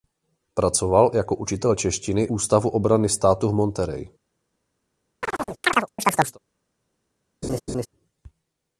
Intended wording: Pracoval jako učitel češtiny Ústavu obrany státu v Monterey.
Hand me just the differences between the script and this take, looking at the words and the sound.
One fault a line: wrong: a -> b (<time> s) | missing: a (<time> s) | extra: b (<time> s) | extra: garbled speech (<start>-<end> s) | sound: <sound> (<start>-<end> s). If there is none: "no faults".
sound: chirp (5.2-6.4 s)
sound: laugh (7.4-7.9 s)